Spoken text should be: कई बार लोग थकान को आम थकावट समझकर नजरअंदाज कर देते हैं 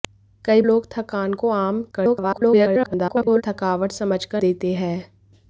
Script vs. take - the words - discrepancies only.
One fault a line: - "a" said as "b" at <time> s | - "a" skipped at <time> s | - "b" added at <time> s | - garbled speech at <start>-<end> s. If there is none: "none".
- "बार" skipped at 0.6 s
- garbled speech at 1.9-3.4 s
- "नजरअंदाज कर" skipped at 4.4 s